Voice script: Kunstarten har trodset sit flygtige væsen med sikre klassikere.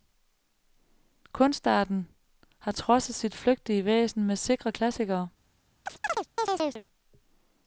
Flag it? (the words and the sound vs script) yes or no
yes